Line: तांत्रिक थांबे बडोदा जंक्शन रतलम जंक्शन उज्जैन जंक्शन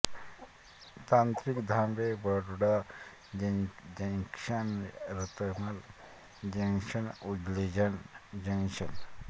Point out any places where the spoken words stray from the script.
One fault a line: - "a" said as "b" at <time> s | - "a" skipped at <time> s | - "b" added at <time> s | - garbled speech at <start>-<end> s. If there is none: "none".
none